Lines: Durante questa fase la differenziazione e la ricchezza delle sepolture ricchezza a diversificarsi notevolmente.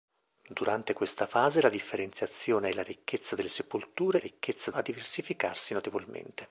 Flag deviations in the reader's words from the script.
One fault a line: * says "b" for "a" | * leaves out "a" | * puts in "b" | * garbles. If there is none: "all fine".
all fine